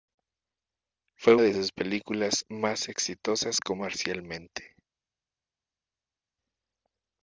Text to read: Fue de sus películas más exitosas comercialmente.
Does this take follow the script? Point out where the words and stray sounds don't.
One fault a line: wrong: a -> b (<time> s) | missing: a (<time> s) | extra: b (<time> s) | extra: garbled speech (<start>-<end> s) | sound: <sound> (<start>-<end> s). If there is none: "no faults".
no faults